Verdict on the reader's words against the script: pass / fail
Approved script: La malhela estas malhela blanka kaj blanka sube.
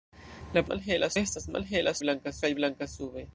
pass